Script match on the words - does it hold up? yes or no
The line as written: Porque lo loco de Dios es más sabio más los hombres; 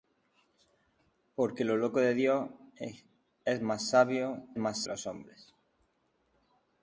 yes